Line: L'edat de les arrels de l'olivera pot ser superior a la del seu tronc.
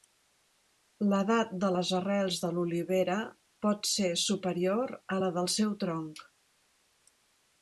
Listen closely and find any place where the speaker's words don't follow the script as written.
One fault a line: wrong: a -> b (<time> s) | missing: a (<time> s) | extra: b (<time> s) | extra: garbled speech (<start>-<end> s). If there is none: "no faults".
no faults